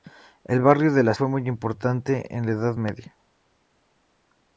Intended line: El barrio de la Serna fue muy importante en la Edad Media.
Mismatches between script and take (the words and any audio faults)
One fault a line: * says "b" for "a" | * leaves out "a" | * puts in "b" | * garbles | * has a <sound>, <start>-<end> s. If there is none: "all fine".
* leaves out "Serna"